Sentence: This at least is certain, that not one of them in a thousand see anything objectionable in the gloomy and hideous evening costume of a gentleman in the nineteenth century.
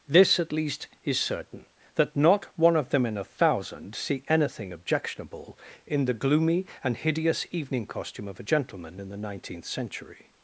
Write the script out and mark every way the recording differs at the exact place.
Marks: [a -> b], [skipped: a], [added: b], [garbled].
This at least is certain, that not one of them in a thousand see anything objectionable in the gloomy and hideous evening costume of a gentleman in the nineteenth century.